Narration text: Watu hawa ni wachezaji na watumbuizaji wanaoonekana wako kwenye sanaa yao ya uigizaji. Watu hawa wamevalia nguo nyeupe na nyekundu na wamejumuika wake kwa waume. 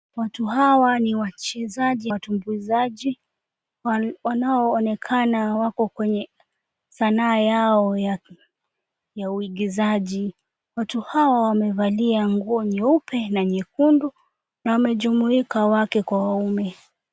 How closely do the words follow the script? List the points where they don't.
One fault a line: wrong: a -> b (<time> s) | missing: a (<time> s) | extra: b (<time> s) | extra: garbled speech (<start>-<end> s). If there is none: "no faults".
missing: na (2.1 s)